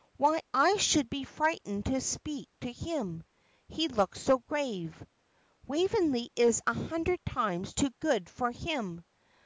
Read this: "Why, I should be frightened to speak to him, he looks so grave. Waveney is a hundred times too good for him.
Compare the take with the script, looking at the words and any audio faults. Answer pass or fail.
pass